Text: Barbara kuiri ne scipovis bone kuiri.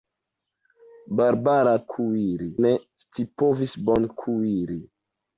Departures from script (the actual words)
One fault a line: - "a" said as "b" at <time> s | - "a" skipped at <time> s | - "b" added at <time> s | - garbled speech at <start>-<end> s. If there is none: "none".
none